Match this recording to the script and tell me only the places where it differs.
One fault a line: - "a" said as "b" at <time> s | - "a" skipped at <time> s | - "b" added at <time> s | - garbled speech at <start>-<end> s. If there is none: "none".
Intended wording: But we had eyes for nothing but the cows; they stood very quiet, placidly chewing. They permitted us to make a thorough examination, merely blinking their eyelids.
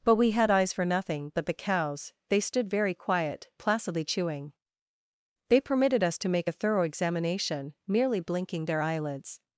none